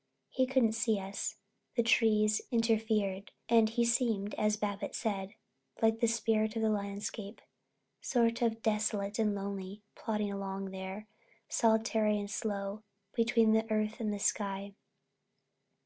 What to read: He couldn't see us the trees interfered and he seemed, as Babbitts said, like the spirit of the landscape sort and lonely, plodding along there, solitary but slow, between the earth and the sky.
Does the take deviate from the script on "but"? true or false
true